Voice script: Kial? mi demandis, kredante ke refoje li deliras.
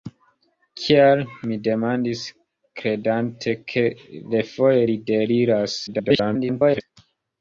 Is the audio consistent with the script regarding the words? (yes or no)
no